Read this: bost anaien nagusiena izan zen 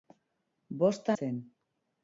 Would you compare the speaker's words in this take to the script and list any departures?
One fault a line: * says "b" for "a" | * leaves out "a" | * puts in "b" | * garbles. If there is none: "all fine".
* leaves out "anaien nagusiena izan"